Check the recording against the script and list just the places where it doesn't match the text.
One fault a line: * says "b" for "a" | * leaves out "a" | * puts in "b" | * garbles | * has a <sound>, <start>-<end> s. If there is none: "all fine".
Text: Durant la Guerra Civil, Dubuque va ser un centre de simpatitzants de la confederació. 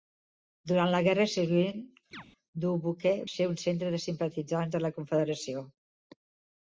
* has a chirp, 2.1-2.2 s
* leaves out "va"